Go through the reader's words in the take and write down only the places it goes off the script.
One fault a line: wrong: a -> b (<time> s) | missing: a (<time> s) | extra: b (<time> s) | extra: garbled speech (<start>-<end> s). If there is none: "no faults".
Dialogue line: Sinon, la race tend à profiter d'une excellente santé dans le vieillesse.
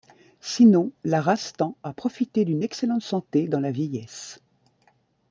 wrong: le -> la (3.6 s)